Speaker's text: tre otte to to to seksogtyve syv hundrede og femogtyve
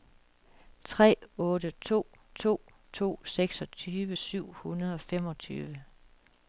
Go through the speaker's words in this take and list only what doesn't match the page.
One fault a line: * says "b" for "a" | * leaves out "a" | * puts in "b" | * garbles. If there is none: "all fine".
all fine